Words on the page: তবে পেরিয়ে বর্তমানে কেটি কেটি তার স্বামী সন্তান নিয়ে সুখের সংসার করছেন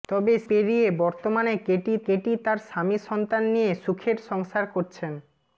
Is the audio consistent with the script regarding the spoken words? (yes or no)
yes